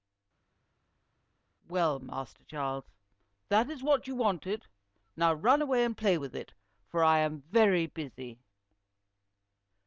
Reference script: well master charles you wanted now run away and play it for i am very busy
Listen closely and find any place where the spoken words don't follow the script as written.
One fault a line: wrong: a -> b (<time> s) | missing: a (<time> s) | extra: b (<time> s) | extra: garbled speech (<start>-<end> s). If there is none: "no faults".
extra: that is what (3.5 s)
extra: with (6.2 s)